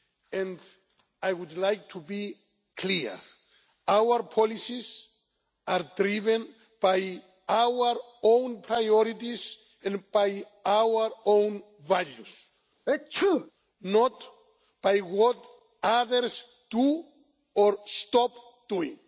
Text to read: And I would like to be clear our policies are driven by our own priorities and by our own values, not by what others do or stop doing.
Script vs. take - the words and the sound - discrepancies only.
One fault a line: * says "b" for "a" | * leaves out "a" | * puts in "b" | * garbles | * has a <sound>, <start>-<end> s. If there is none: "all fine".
* has a sneeze, 12.9-13.5 s